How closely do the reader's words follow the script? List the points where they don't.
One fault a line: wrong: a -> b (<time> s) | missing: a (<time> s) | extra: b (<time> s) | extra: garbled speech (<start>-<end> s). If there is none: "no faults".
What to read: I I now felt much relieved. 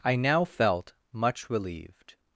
missing: I (0.1 s)